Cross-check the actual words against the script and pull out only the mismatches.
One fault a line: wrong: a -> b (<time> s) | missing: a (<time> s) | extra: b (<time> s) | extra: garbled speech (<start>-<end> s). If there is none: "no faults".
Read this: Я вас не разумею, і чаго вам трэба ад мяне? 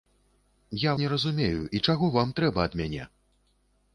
missing: вас (0.9 s)